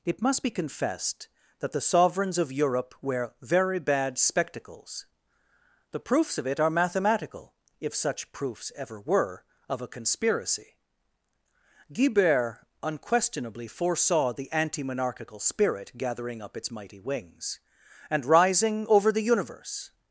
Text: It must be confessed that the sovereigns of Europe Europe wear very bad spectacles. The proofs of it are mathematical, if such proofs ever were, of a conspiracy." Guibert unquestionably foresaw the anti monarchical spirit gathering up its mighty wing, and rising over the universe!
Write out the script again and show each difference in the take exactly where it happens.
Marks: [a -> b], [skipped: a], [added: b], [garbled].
It must be confessed that the sovereigns of Europe [skipped: Europe] wear very bad spectacles. The proofs of it are mathematical, if such proofs ever were, of a conspiracy." Guibert unquestionably foresaw the anti monarchical spirit gathering up its mighty [wing, -> wings] and rising over the universe!